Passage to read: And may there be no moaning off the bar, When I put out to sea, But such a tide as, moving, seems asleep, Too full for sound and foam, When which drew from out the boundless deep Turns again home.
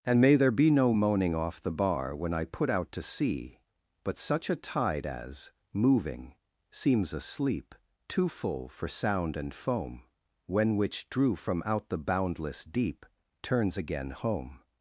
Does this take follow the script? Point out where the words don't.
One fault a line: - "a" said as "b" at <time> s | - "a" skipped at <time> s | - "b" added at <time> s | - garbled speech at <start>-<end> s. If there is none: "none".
none